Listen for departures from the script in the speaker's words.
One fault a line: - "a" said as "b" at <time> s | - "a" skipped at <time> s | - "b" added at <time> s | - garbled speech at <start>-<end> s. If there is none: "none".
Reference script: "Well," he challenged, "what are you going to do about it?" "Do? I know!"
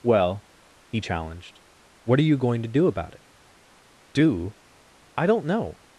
- "don't" added at 5.2 s